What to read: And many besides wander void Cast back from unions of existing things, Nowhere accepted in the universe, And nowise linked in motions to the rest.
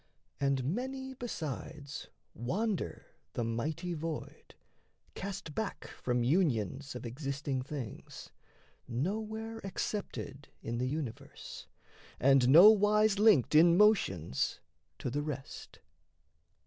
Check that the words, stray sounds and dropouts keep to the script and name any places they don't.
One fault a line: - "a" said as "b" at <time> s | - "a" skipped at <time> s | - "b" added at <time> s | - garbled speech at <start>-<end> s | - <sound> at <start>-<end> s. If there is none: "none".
- "the mighty" added at 3.3 s